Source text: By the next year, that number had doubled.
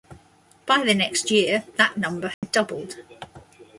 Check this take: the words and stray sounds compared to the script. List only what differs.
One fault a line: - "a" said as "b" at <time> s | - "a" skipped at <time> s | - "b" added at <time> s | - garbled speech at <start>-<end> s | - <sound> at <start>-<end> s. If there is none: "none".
- dropout at 2.3-2.4 s